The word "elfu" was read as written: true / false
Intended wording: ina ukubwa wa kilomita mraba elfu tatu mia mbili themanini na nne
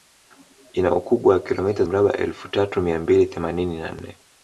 true